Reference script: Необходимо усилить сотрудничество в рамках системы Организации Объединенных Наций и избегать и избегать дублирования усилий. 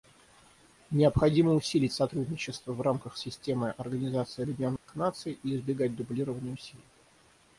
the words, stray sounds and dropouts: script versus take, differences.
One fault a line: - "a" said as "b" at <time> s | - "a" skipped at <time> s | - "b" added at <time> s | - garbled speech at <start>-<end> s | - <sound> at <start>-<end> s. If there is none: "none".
- dropout at 4.8-4.9 s
- "и избегать" skipped at 6.0 s